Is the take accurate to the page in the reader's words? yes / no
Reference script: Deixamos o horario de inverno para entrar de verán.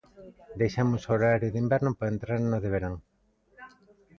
no